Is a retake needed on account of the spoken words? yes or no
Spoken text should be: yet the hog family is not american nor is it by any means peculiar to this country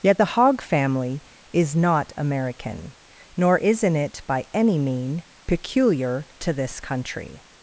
yes